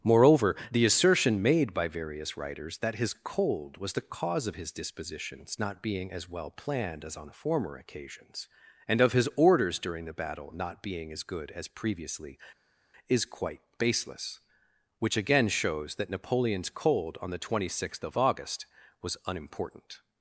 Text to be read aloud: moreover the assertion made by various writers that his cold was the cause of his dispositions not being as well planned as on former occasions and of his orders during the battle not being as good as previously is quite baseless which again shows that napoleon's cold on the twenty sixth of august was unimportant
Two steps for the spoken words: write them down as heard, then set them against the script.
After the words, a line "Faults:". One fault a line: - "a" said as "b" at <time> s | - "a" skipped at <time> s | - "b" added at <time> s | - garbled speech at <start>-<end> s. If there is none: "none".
moreover the assertion made by various writers that his cold was the cause of his dispositions not being as well planned as on former occasions and of his orders during the battle not being as good as previously is quite baseless which again shows that napoleon's cold on the twenty sixth of august was unimportant
Faults:
none